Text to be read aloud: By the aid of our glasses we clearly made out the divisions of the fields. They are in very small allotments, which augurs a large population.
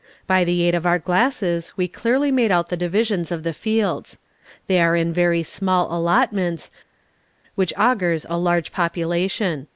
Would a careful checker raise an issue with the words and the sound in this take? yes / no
no